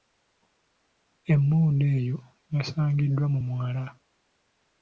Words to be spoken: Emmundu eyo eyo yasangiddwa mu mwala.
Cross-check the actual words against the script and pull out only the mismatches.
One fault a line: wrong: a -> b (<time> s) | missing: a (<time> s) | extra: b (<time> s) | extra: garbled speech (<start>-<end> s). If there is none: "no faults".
missing: eyo (2.2 s)